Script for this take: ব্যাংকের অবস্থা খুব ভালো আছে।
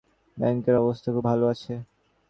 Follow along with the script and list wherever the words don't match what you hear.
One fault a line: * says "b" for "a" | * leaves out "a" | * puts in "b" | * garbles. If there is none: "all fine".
all fine